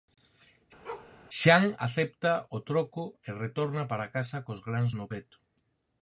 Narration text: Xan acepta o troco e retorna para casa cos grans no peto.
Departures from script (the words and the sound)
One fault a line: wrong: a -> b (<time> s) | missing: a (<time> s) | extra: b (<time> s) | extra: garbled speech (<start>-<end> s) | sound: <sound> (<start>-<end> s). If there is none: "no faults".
sound: bark (0.8-1.1 s)